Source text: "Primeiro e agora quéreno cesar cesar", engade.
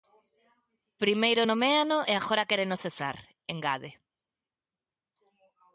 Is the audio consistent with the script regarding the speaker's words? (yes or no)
no